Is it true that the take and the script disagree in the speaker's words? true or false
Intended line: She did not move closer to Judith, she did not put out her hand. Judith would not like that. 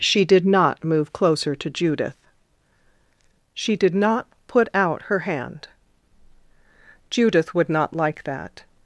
false